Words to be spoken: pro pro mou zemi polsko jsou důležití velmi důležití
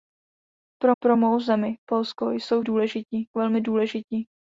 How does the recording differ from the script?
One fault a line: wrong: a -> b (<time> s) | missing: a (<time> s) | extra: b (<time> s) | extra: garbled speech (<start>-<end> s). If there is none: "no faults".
no faults